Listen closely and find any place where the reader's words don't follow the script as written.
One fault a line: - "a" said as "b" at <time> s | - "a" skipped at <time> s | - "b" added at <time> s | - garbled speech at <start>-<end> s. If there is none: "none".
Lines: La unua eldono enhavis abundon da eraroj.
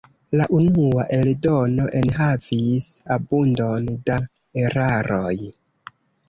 none